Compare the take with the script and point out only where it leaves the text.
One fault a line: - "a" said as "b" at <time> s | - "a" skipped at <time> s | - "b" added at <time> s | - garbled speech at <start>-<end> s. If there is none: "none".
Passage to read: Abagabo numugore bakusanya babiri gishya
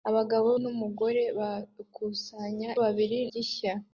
none